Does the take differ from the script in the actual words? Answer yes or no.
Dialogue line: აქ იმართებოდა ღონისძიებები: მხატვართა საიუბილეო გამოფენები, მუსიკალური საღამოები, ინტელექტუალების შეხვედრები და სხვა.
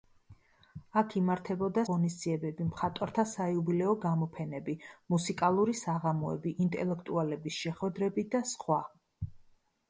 no